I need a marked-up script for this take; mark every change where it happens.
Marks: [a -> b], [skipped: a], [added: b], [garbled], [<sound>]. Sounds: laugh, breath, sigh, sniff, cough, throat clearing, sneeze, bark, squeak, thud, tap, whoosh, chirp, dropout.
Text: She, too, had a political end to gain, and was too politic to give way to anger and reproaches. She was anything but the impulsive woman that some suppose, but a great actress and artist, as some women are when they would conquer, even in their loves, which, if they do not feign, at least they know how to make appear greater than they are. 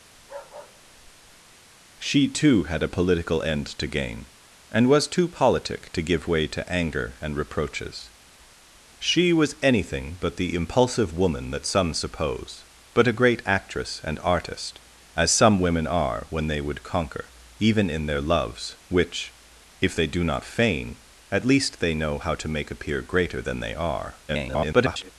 [bark] She, too, had a political end to gain, and was too politic to give way to anger and reproaches. She was anything but the impulsive woman that some suppose, but a great actress and artist, as some women are when they would conquer, even in their loves, which, if they do not feign, at least they know how to make appear greater than they are. [garbled]